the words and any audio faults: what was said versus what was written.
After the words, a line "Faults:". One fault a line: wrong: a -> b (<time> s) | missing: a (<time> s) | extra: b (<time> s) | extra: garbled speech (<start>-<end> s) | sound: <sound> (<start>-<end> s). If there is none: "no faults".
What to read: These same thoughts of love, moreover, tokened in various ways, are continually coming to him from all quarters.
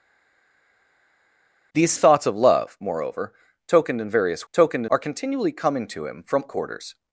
These thoughts of love, moreover, tokened in various tokened, are continually coming to him from quarters.
Faults:
missing: same (1.9 s)
wrong: ways -> tokened (4.5 s)
missing: all (6.4 s)